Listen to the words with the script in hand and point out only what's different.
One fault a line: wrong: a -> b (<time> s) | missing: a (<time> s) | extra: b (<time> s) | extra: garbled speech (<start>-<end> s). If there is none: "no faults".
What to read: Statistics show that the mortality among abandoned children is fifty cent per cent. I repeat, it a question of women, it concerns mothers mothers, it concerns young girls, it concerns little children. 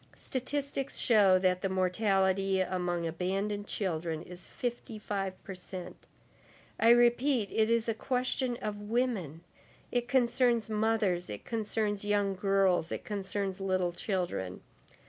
wrong: cent -> five (4.9 s)
extra: is (7.7 s)
missing: mothers (11.3 s)